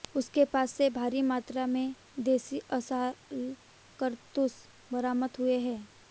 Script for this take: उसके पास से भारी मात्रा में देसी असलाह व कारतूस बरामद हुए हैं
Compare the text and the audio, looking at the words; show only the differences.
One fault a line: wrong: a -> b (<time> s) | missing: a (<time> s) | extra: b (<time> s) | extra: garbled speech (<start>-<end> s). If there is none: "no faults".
missing: व (3.1 s)